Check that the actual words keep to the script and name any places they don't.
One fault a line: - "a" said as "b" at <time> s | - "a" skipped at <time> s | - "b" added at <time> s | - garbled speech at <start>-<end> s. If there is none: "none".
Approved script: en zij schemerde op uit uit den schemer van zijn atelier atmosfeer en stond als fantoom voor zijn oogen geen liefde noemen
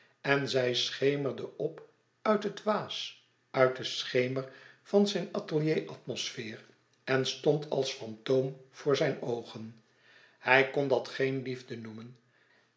- "het waas" added at 2.4 s
- "hij kon dat" added at 10.4 s